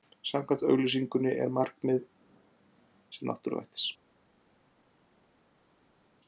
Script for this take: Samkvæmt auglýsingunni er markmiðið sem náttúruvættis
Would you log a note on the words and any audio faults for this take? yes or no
no